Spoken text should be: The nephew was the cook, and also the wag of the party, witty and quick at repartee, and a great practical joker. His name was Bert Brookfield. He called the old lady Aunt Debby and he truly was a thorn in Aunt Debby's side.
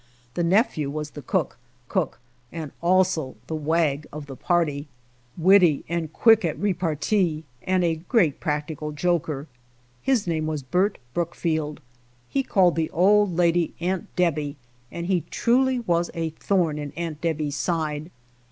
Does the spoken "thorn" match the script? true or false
true